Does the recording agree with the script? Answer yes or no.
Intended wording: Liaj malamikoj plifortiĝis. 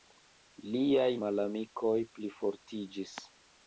yes